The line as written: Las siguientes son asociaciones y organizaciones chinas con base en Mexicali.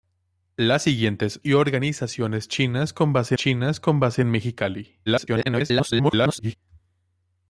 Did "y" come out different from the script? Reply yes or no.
yes